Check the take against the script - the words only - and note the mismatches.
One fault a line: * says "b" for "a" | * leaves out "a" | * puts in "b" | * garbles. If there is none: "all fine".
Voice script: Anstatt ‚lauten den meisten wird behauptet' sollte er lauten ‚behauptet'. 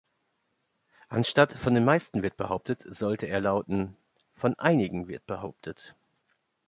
* says "von" for "lauten"
* puts in "von einigen wird"